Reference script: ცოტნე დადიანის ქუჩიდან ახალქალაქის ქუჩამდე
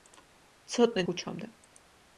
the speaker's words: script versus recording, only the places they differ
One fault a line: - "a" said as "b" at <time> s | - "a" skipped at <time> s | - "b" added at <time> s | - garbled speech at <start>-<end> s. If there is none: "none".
- "დადიანის ქუჩიდან ახალქალაქის" skipped at 1.0 s